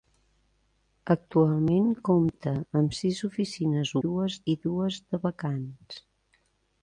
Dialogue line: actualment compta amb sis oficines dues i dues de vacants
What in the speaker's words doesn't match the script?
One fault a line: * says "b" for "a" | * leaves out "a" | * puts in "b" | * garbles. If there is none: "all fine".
all fine